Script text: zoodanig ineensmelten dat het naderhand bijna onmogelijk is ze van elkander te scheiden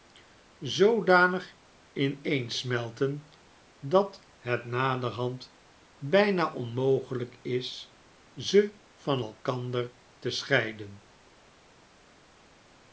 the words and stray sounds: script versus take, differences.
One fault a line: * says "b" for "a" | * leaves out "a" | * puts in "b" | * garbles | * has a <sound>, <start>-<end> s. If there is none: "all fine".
all fine